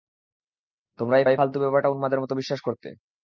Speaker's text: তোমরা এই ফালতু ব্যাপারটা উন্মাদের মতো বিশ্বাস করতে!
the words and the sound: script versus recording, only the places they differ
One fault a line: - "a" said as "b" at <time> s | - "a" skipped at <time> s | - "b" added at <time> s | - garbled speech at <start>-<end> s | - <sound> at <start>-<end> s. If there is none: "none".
- "এই" added at 1.3 s